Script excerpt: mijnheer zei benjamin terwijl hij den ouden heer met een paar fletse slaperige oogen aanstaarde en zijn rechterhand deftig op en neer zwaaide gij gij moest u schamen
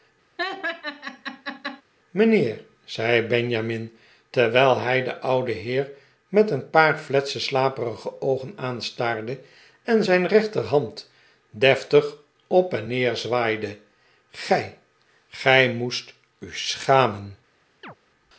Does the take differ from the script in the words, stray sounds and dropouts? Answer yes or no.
yes